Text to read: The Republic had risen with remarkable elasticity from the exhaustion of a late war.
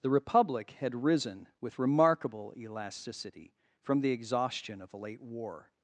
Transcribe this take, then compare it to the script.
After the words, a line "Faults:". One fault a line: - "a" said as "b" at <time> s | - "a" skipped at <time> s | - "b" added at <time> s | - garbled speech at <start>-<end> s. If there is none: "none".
The Republic had risen with remarkable elasticity from the exhaustion of a late war.
Faults:
none